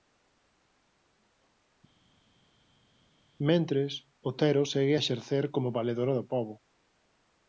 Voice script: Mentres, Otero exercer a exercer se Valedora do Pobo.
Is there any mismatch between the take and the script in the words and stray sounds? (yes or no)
yes